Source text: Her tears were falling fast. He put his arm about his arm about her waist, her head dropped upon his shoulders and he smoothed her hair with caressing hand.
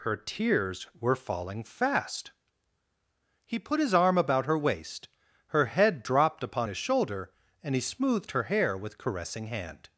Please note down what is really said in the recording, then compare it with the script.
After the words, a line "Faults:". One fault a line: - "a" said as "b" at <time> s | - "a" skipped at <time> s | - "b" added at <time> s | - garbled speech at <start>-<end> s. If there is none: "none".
Her tears were falling fast. He put his arm about her waist, her head dropped upon his shoulder and he smoothed her hair with caressing hand.
Faults:
- "his arm about" skipped at 4.5 s
- "shoulders" said as "shoulder" at 6.8 s